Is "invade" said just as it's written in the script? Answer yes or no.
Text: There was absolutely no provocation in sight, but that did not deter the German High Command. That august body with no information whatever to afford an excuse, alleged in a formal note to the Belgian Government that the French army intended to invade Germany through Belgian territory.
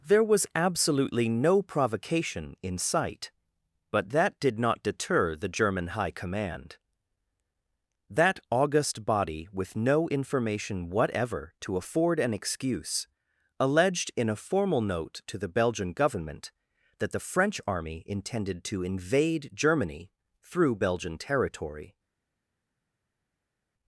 yes